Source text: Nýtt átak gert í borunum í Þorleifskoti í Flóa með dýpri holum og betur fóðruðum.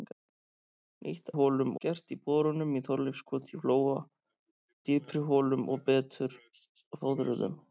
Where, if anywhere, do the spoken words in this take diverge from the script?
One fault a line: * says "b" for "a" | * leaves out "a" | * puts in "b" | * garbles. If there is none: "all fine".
* says "holum" for "átak"
* leaves out "með"